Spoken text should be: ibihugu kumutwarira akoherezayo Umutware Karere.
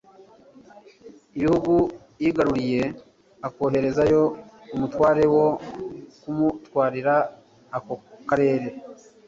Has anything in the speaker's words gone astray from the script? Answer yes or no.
yes